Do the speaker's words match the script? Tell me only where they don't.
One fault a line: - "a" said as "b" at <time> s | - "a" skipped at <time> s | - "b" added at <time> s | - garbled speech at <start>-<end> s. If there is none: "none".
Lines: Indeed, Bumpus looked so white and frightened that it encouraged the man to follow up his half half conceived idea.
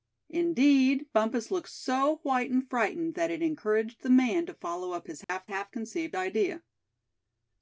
none